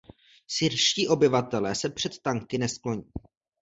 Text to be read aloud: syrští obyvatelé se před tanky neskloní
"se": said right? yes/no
yes